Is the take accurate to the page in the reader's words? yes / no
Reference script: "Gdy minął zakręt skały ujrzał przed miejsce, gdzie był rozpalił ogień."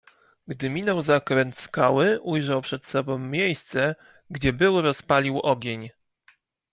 no